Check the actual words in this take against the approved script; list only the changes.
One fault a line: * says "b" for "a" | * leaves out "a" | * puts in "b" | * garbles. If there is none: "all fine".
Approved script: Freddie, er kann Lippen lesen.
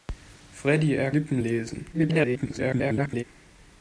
* leaves out "kann"
* garbles